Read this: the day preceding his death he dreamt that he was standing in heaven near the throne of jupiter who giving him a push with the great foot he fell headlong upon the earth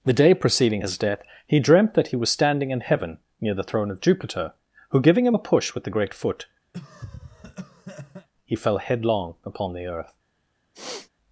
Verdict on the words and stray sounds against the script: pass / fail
fail